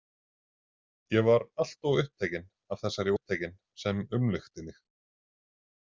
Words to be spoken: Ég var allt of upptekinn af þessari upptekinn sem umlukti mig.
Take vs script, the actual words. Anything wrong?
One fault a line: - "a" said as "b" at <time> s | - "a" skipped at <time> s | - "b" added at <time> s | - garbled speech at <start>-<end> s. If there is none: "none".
none